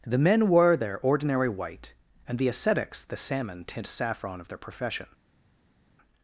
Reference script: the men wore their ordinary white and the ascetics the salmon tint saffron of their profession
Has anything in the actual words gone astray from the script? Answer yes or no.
no